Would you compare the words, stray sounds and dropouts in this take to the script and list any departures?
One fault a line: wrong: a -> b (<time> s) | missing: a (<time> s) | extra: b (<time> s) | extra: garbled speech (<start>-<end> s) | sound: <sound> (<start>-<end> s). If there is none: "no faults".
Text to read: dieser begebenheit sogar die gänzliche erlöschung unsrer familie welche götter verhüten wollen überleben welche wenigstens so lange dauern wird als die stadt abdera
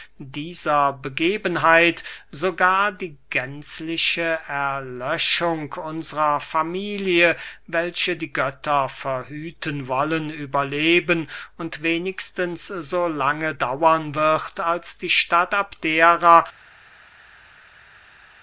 extra: die (8.2 s)
wrong: welche -> und (11.6 s)